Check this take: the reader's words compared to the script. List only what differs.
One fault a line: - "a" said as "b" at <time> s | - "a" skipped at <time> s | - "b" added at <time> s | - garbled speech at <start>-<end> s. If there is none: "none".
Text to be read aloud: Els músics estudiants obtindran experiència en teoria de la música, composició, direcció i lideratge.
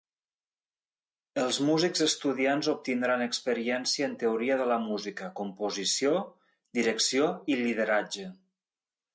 none